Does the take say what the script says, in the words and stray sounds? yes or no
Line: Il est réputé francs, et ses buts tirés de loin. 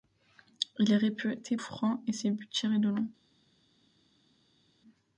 yes